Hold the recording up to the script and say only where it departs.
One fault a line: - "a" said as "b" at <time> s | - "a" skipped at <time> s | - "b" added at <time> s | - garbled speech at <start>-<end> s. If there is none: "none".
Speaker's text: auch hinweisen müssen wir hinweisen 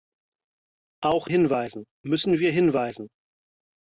none